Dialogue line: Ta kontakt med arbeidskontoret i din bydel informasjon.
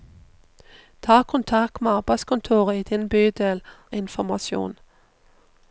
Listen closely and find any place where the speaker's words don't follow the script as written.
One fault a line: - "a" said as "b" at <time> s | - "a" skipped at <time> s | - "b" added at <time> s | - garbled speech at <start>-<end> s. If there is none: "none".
none